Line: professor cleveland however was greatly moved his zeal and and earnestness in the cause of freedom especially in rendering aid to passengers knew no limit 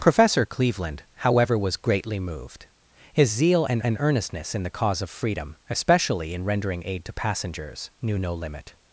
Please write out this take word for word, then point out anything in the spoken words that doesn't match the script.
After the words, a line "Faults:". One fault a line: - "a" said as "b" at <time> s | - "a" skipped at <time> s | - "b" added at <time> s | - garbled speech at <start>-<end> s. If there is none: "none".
professor cleveland however was greatly moved his zeal and and earnestness in the cause of freedom especially in rendering aid to passengers knew no limit
Faults:
none